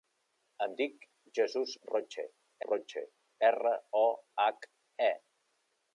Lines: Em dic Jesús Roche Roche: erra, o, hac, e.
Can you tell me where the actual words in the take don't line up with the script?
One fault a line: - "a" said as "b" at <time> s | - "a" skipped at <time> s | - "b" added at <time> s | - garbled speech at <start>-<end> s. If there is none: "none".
none